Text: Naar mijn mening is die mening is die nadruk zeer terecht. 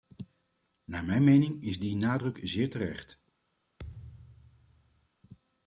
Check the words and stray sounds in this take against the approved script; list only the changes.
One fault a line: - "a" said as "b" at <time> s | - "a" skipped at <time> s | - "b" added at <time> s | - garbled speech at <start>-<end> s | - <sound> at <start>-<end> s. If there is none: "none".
- "mening is die" skipped at 1.9 s
- thud at 3.8-5.1 s